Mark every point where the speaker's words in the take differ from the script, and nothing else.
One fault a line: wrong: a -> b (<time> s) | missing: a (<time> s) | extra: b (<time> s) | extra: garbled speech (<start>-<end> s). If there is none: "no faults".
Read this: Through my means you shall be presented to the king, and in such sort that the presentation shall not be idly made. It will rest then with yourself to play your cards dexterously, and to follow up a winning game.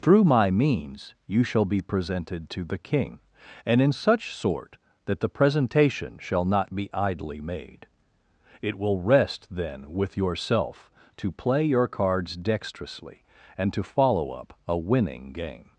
no faults